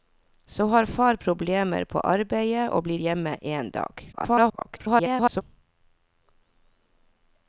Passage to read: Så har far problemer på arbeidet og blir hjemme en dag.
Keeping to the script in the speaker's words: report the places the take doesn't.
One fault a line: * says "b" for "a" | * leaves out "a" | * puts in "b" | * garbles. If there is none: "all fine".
* garbles